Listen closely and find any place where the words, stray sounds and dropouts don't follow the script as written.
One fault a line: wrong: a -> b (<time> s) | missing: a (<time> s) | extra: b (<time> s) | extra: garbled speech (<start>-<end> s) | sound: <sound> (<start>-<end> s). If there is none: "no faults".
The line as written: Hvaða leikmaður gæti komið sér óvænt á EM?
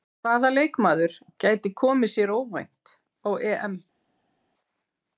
no faults